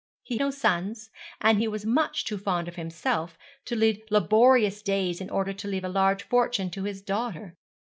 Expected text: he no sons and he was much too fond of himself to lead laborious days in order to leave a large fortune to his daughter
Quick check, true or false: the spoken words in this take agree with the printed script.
true